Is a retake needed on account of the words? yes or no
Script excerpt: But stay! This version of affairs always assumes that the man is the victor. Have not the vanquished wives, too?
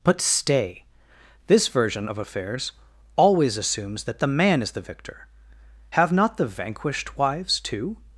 no